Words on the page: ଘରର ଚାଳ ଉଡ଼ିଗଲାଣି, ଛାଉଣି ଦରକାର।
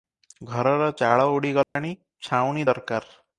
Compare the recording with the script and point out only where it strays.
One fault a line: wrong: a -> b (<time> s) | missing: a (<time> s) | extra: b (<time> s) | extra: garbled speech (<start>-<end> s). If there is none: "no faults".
no faults